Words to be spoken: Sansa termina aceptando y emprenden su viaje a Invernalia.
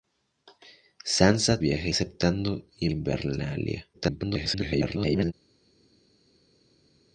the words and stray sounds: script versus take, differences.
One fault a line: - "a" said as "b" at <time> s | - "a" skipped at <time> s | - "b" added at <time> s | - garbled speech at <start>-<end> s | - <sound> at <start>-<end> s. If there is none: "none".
- "termina" said as "viaje" at 1.6 s
- "emprenden su viaje" skipped at 2.9 s
- garbled speech at 3.9-5.3 s